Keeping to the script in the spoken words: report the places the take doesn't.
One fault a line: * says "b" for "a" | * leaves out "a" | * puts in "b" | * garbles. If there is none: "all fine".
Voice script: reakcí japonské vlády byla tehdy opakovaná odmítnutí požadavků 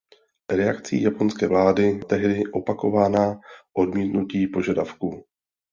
* leaves out "byla"